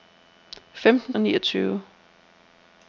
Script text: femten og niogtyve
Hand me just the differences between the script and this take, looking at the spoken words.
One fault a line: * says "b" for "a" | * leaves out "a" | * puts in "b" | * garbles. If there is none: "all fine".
all fine